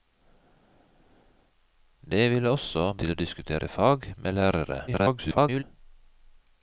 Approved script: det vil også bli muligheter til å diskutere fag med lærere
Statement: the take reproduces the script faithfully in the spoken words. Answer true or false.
false